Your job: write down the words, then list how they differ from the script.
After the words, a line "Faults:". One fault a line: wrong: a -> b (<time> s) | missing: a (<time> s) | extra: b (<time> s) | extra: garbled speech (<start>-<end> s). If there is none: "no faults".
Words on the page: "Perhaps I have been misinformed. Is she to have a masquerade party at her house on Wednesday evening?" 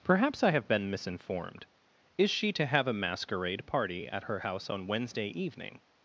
"Perhaps I have been misinformed. Is she to have a masquerade party at her house on Wednesday evening?"
Faults:
no faults